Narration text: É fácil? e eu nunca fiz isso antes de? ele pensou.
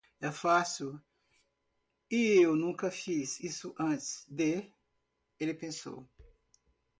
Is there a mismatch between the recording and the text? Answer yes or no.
no